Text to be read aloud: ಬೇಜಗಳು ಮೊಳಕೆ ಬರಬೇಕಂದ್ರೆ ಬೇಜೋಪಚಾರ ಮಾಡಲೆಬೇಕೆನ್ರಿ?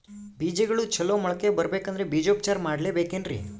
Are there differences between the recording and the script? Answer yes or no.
yes